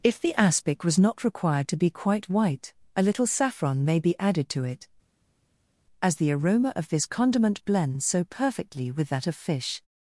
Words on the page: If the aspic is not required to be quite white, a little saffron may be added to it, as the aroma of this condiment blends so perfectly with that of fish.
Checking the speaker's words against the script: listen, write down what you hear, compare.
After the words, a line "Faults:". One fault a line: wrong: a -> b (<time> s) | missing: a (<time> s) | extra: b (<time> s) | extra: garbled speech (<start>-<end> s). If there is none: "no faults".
If the aspic was not required to be quite white, a little saffron may be added to it, as the aroma of this condiment blends so perfectly with that of fish.
Faults:
wrong: is -> was (0.8 s)